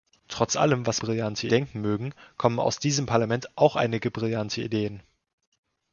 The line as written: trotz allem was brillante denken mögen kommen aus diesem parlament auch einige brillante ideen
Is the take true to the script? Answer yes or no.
yes